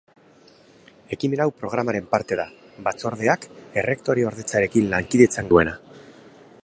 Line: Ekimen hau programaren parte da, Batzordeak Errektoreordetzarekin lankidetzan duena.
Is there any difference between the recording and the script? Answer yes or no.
no